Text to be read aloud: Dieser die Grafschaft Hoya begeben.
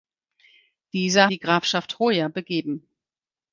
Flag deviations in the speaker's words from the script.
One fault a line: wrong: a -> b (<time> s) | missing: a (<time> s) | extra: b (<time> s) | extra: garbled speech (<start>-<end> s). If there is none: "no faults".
no faults